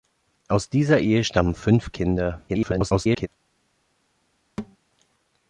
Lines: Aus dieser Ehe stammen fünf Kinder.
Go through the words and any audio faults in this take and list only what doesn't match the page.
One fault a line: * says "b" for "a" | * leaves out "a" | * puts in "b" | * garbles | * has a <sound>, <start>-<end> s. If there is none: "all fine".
* garbles
* has a thud, 4.6-4.8 s